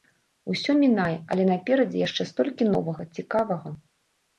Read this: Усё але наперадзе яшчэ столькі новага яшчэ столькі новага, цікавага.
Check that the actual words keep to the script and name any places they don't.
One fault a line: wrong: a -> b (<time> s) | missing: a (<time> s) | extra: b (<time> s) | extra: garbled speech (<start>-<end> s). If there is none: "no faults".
extra: мінае (0.8 s)
missing: яшчэ столькі новага (3.1 s)